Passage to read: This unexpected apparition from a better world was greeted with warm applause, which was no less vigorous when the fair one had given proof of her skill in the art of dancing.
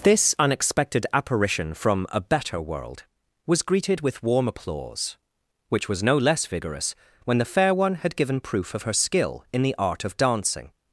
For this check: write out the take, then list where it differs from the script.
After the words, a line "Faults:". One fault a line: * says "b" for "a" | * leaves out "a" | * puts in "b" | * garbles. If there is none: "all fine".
This unexpected apparition from a better world was greeted with warm applause, which was no less vigorous when the fair one had given proof of her skill in the art of dancing.
Faults:
all fine